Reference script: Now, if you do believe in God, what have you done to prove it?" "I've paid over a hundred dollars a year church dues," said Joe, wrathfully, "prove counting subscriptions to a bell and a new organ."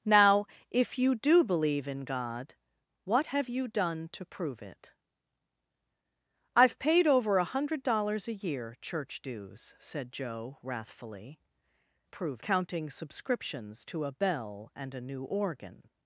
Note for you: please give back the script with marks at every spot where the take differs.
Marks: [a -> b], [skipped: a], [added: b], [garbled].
Now, if you do believe in God, what have you done to prove it?" "I've paid over a hundred dollars a year church dues," said Joe, wrathfully, "prove counting subscriptions to a bell and a new organ."